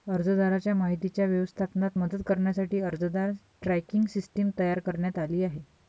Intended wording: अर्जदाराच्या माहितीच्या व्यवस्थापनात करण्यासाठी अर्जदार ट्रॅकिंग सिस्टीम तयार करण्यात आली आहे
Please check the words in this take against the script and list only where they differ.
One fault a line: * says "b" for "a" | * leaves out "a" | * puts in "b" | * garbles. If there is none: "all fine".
* puts in "मदत"